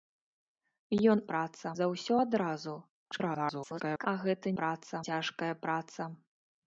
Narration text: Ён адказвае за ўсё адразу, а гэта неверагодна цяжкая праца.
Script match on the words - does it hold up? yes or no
no